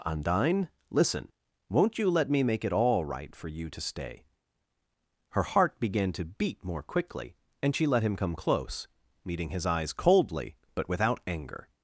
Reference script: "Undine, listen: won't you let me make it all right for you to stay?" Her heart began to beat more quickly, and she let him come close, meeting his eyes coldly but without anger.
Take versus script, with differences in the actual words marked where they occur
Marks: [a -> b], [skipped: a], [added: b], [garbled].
"Undine, listen: won't you let me make it all right for you to stay?" Her heart began to beat more quickly, and she let him come close, meeting his eyes coldly but without anger.